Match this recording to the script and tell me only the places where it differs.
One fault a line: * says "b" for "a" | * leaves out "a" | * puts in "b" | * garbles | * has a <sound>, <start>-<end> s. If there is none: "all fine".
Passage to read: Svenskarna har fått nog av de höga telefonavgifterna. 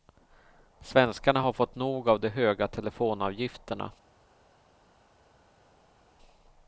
all fine